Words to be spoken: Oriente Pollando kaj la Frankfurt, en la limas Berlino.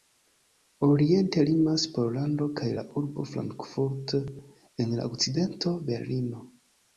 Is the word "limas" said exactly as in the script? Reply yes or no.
no